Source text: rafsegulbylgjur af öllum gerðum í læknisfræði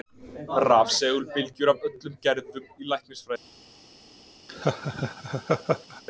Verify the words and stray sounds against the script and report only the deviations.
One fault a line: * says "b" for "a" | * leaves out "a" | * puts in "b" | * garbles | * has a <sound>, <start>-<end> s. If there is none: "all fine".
* has a laugh, 4.5-6.0 s